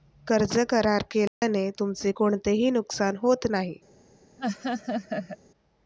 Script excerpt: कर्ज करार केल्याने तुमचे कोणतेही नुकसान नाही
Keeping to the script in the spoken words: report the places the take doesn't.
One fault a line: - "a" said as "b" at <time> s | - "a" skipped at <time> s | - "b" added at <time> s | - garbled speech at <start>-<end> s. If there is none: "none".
- "होत" added at 3.2 s